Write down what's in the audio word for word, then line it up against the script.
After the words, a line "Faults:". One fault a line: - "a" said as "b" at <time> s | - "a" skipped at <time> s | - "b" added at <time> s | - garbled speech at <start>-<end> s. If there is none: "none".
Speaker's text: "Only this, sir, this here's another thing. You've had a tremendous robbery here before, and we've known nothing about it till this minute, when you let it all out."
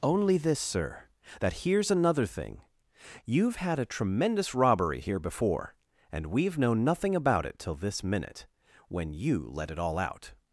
"Only this, sir, that here's another thing. You've had a tremendous robbery here before, and we've known nothing about it till this minute, when you let it all out."
Faults:
- "this" said as "that" at 1.4 s